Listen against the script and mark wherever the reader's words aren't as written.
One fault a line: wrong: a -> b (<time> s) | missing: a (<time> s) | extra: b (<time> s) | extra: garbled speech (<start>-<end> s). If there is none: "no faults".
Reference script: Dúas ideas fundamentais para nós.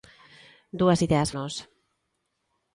missing: fundamentais para (1.3 s)